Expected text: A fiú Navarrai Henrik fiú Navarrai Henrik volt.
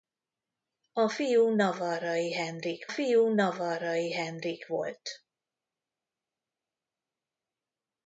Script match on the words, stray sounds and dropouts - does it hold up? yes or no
yes